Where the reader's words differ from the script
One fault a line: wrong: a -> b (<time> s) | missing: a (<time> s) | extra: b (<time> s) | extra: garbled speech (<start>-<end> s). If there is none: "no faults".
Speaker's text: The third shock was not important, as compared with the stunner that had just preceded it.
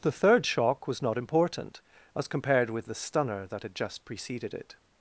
no faults